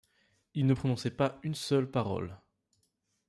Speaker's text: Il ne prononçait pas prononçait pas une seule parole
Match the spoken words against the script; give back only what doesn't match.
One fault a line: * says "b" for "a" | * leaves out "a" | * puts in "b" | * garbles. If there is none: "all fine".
* leaves out "prononçait pas"